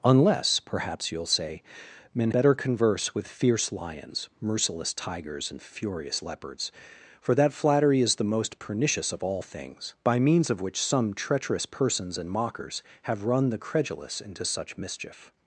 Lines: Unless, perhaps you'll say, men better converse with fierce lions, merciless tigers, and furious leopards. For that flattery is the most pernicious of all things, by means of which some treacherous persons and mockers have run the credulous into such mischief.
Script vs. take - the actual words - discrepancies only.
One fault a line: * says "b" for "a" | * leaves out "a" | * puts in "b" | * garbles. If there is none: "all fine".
all fine